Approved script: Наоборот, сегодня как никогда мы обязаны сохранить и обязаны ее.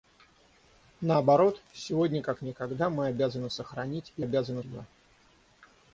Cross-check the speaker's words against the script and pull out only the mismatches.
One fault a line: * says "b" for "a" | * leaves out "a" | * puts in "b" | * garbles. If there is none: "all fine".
all fine